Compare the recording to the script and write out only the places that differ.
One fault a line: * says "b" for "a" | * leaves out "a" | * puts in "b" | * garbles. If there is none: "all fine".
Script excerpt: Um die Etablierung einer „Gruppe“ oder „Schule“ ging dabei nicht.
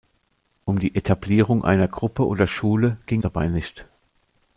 all fine